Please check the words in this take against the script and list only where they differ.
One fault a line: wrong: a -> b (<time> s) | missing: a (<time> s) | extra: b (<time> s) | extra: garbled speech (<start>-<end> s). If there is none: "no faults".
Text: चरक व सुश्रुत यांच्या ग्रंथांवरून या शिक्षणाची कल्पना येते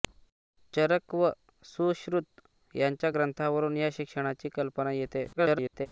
extra: garbled speech (5.3-5.9 s)